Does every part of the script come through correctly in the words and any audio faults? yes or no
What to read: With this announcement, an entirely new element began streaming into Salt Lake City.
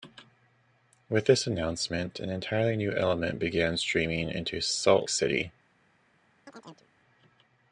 no